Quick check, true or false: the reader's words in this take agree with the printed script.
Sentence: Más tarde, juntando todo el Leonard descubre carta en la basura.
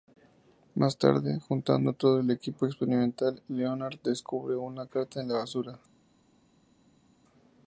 false